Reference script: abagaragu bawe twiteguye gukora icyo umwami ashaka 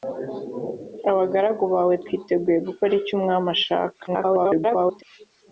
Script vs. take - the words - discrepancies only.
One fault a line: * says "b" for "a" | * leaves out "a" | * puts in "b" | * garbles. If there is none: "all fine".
* garbles